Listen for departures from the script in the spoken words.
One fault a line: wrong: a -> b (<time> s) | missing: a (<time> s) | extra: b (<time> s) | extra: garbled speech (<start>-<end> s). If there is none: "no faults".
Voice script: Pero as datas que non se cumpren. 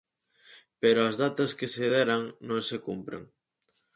extra: se deran (1.7 s)